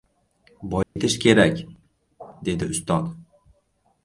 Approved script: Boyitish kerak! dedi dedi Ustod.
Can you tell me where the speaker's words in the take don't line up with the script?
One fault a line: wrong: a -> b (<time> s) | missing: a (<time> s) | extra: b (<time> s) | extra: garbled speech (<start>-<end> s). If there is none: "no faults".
missing: dedi (2.6 s)